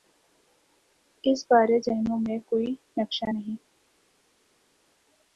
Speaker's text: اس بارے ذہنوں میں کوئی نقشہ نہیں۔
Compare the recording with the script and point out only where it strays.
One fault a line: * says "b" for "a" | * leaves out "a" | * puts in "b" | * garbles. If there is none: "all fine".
all fine